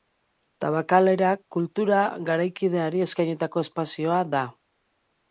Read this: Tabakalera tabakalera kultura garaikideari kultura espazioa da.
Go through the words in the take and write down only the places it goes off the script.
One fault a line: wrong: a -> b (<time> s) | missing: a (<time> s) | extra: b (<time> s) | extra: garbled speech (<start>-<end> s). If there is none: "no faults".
missing: tabakalera (1.3 s)
wrong: kultura -> eskainitako (3.1 s)